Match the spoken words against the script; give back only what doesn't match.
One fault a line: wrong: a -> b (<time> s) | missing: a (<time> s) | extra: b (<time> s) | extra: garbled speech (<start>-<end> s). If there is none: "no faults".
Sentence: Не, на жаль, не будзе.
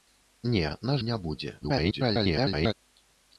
missing: жаль (0.9 s)
extra: garbled speech (1.6-2.7 s)